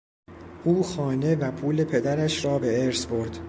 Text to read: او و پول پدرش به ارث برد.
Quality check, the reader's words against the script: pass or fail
fail